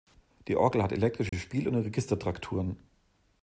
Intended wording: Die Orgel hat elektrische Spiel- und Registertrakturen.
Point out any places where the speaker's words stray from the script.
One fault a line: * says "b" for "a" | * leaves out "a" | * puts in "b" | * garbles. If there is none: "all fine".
all fine